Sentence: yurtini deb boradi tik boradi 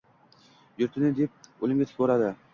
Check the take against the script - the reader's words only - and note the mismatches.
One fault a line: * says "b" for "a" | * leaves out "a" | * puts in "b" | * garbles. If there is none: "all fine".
* says "o‘limga" for "boradi"